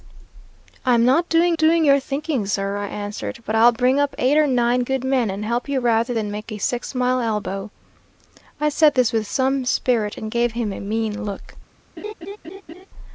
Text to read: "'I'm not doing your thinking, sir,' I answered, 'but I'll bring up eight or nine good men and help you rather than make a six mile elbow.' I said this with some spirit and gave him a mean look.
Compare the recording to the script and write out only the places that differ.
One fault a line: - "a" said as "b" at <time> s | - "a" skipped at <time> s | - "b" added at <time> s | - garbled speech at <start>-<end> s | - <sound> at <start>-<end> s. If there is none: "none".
- "doing" added at 1.6 s
- laugh at 12.0-12.9 s